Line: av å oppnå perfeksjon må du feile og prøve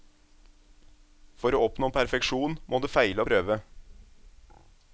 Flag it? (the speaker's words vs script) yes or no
yes